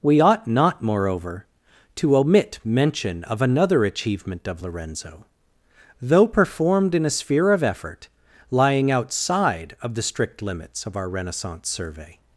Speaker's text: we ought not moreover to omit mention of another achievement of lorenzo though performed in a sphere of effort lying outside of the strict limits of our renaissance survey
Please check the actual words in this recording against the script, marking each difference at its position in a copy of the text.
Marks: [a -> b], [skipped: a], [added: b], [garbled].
we ought not moreover to omit mention of another achievement of lorenzo though performed in a sphere of effort lying outside of the strict limits of our renaissance survey